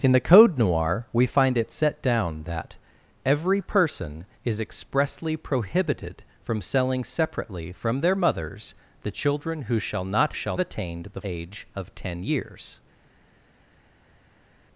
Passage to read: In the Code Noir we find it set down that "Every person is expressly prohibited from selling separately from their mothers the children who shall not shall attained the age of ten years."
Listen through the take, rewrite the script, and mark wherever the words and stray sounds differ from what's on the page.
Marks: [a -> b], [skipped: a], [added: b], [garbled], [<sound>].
In the Code Noir we find it set down that "Every person is expressly prohibited from selling separately from their mothers the children who shall not shall attained the age of ten years."